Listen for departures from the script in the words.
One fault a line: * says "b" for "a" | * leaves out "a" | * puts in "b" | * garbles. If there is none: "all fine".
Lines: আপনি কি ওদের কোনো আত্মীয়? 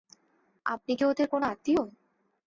all fine